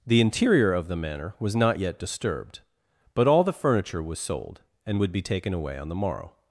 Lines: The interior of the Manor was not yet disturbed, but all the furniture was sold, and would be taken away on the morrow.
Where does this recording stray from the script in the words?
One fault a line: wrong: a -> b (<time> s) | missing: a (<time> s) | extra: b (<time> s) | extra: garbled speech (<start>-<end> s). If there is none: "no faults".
no faults